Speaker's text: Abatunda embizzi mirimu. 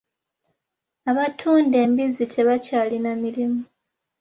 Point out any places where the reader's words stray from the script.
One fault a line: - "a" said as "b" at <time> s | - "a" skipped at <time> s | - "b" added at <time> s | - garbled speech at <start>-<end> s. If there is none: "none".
- "tebakyalina" added at 2.3 s